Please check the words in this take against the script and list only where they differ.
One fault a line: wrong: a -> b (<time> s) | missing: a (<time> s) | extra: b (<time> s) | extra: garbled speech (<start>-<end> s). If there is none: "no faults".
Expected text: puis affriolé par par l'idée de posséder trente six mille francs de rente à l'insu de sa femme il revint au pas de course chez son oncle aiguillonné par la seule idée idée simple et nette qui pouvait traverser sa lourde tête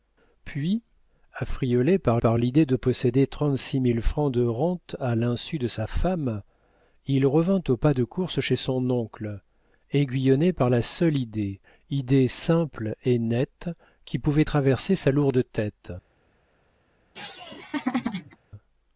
no faults